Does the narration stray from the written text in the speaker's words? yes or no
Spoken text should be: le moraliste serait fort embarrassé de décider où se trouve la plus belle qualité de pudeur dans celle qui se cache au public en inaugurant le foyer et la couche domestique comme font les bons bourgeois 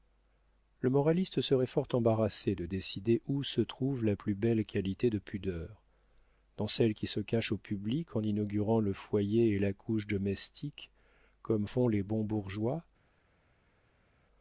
no